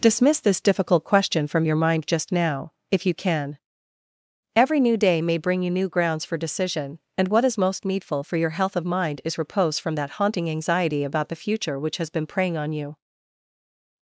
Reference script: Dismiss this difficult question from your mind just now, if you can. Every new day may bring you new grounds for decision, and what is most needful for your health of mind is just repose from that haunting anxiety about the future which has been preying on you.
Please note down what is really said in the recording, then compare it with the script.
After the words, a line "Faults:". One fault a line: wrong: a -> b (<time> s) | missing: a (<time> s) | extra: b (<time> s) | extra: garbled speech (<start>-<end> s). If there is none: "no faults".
Dismiss this difficult question from your mind just now, if you can. Every new day may bring you new grounds for decision, and what is most needful for your health of mind is repose from that haunting anxiety about the future which has been preying on you.
Faults:
missing: just (9.4 s)